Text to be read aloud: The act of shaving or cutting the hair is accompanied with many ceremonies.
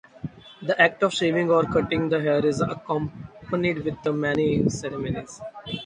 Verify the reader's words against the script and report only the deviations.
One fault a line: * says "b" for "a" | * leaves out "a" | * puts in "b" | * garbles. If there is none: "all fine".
all fine